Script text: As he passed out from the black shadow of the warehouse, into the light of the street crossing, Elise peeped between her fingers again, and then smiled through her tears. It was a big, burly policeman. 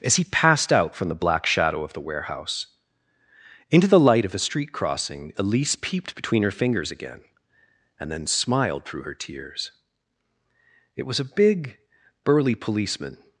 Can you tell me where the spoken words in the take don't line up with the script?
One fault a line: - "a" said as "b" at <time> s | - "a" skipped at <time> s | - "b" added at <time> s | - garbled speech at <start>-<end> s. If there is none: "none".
- "the" said as "a" at 4.3 s